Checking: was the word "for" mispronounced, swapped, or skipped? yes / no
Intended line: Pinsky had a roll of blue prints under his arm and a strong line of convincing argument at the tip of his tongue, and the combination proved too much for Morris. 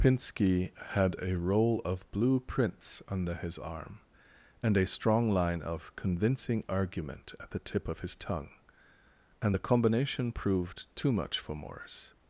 no